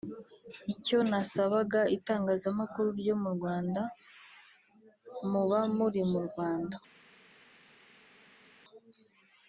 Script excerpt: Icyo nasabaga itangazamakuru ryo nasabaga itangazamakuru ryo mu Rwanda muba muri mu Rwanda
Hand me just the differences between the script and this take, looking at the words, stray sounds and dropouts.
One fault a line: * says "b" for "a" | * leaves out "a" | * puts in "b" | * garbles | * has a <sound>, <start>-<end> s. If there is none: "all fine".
* leaves out "nasabaga itangazamakuru ryo"